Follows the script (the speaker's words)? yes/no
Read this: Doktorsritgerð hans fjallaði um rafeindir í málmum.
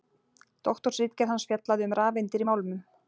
yes